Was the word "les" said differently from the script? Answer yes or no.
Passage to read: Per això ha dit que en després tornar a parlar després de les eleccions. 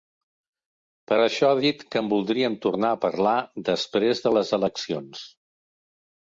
no